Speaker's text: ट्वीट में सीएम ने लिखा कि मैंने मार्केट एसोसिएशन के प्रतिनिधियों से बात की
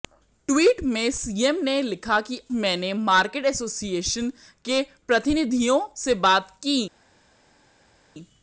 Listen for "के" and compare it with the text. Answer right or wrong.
right